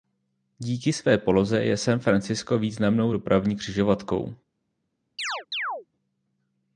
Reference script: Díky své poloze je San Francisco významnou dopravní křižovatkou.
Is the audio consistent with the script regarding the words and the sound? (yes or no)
no